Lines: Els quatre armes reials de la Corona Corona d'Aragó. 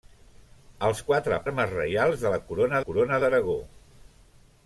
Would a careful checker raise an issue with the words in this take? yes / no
no